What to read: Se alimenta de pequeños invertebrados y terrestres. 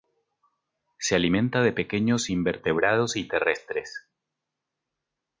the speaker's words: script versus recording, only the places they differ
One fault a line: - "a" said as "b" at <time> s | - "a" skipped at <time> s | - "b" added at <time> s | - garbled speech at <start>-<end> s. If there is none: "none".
none